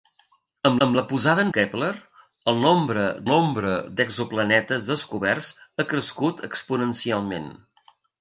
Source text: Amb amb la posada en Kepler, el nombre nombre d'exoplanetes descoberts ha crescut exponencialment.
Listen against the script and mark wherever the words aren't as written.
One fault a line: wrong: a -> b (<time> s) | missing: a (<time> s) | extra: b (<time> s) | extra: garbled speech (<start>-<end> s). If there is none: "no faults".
no faults